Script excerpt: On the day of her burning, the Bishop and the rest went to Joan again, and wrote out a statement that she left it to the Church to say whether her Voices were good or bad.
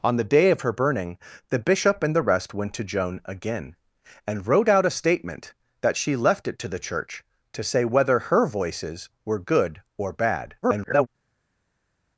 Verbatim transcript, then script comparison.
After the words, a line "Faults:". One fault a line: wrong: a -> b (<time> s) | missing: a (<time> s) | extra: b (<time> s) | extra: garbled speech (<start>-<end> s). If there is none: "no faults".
On the day of her burning, the Bishop and the rest went to Joan again, and wrote out a statement that she left it to the Church to say whether her Voices were good or bad. [garbled]
Faults:
extra: garbled speech (10.6-11.1 s)